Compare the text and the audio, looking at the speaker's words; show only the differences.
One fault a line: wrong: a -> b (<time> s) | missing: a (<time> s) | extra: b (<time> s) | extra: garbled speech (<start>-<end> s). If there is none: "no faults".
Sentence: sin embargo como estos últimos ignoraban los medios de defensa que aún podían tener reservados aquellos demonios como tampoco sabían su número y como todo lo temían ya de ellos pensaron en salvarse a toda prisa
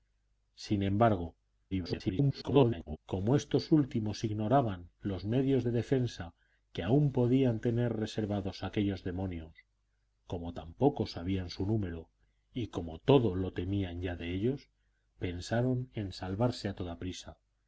extra: garbled speech (1.7-3.0 s)